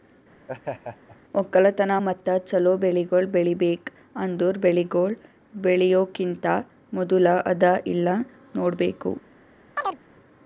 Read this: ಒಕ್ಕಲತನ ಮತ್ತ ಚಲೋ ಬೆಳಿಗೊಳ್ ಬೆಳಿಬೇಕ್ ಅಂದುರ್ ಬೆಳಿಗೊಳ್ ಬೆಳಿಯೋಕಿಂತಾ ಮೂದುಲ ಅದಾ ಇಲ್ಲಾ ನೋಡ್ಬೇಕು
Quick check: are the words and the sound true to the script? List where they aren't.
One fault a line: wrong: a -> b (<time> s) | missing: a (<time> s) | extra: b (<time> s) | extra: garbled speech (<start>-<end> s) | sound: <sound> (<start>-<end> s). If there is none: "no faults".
sound: laugh (0.5-1.2 s)
sound: chirp (9.8-10.0 s)